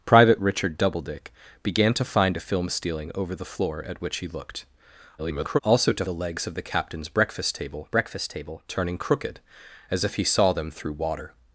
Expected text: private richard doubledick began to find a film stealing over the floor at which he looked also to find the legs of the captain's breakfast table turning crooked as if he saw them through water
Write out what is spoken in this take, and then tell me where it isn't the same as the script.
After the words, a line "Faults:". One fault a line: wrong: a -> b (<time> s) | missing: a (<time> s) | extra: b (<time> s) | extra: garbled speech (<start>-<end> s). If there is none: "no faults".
private richard doubledick began to find a film stealing over the floor at which he looked [garbled] also to the legs of the captain's breakfast table breakfast table turning crooked as if he saw them through water
Faults:
extra: garbled speech (5.2-5.6 s)
missing: find (6.0 s)
extra: breakfast table (7.9 s)